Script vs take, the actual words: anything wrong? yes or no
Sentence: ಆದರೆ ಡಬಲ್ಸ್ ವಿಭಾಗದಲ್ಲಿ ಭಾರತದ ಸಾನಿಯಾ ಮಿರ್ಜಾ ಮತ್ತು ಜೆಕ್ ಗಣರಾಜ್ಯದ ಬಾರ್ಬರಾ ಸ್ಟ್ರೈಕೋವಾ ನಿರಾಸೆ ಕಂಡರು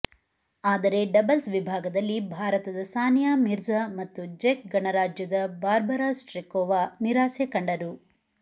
no